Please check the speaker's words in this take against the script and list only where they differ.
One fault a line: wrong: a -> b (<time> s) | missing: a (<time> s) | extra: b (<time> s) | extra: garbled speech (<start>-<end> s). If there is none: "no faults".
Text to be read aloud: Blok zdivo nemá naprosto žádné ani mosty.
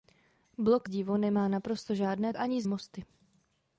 no faults